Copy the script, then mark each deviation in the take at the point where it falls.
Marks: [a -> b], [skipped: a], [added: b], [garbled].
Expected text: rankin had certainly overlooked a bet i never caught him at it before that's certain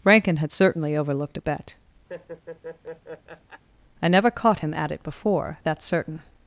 rankin had certainly overlooked a bet i never caught him at it before that's certain